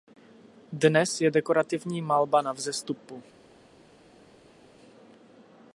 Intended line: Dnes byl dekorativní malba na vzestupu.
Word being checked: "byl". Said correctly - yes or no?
no